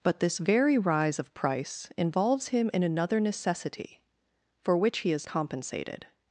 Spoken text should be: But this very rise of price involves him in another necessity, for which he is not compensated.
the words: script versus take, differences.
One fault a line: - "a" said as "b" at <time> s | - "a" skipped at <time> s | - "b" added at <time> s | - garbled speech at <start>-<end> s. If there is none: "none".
- "not" skipped at 5.3 s